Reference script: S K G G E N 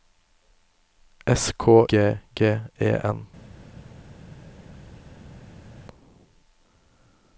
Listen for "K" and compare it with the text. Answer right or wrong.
right